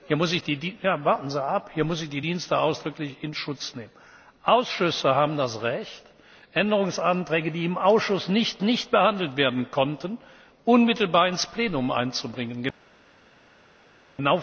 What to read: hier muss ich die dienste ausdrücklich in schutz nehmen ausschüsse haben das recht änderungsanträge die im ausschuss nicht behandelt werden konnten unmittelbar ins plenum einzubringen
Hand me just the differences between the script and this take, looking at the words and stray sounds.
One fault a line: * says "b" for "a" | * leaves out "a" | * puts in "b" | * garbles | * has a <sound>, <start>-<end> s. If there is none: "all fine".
* puts in "nicht"